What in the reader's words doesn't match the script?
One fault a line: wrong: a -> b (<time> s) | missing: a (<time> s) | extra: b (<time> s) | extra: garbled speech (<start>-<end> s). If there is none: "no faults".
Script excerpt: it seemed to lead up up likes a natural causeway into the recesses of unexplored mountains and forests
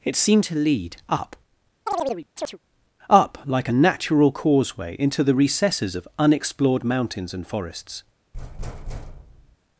wrong: likes -> like (3.4 s)